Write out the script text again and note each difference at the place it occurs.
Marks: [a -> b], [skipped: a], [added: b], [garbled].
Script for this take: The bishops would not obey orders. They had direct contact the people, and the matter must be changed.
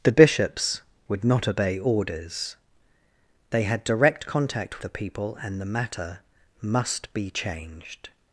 The bishops would not obey orders. They had direct contact the people, and the matter must be changed.